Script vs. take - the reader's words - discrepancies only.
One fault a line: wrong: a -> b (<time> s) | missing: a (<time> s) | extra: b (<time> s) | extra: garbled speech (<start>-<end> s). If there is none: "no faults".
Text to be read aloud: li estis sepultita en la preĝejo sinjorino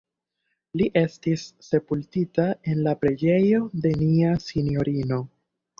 extra: de nia (3.9 s)